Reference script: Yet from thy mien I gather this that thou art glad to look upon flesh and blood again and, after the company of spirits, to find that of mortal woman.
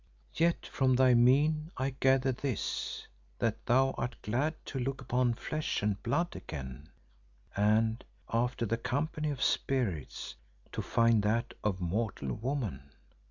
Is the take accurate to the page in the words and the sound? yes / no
yes